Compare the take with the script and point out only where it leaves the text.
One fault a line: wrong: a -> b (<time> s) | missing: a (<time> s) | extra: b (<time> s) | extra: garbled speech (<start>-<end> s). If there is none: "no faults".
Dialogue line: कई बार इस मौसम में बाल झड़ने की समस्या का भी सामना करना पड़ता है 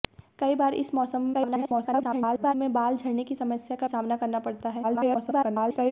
extra: garbled speech (1.3-2.5 s)
missing: भी (3.9 s)
extra: garbled speech (4.8-5.9 s)